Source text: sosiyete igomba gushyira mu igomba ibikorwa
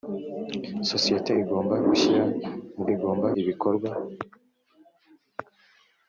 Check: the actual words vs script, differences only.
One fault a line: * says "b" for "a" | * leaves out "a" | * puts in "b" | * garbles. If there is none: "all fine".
all fine